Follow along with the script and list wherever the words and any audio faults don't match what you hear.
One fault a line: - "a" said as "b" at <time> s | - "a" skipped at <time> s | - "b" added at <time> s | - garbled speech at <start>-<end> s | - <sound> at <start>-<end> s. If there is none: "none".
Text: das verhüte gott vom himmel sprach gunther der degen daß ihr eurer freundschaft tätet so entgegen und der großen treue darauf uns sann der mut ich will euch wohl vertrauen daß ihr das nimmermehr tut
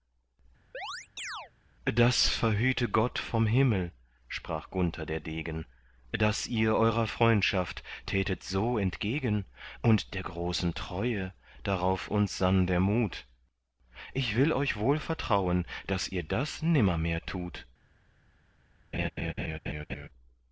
- chirp at 0.7-1.5 s
- laugh at 18.9-20.1 s